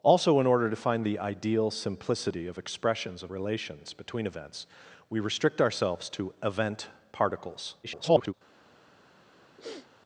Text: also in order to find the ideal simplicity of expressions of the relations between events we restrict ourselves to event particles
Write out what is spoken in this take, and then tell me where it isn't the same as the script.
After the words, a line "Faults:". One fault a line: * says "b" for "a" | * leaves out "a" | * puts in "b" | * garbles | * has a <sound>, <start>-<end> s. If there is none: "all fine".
also in order to find the ideal simplicity of expressions of relations between events we restrict ourselves to event particles [garbled]
Faults:
* leaves out "the"
* garbles
* has a sniff, 9.6-9.9 s